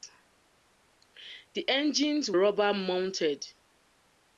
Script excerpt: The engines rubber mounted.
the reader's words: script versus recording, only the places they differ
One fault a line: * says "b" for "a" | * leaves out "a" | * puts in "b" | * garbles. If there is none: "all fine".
all fine